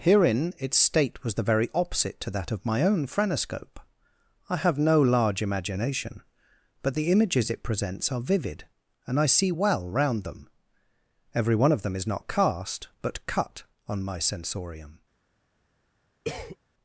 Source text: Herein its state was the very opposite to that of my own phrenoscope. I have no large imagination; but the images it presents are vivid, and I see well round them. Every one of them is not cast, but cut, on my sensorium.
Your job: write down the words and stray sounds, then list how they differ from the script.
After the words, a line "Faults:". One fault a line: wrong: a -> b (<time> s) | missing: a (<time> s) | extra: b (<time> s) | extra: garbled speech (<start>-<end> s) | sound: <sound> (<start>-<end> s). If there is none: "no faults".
Herein its state was the very opposite to that of my own phrenoscope. I have no large imagination; but the images it presents are vivid, and I see well round them. Every one of them is not cast, but cut, on my sensorium.
Faults:
sound: cough (16.2-16.6 s)